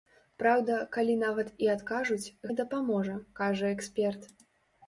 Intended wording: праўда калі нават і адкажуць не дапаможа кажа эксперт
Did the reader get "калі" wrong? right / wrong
right